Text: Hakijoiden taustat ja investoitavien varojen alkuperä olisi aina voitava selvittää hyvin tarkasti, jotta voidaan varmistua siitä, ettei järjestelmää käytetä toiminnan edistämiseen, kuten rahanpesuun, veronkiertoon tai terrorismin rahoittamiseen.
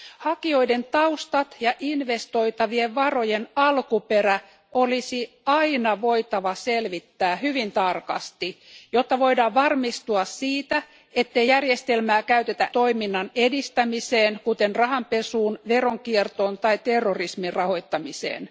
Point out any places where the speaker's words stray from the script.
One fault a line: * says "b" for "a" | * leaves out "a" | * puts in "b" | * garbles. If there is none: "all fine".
all fine